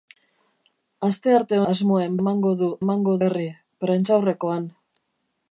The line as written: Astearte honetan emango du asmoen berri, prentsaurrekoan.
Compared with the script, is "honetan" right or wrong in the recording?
wrong